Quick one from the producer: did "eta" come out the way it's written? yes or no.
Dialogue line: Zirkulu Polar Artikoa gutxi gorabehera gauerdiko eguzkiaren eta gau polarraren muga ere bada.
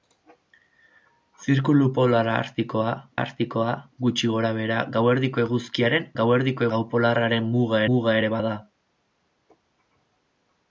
no